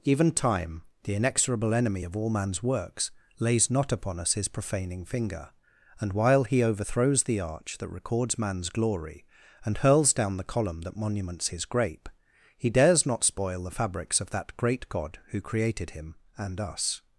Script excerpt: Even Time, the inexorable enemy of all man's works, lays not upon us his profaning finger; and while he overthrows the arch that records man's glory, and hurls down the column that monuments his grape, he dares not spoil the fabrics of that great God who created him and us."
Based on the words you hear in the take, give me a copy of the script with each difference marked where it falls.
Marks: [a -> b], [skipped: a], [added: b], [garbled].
Even Time, the inexorable enemy of all man's works, lays not upon us his profaning finger; and while he overthrows the arch that records man's glory, and hurls down the column that monuments his grape, he dares not spoil the fabrics of that great God who created him and us."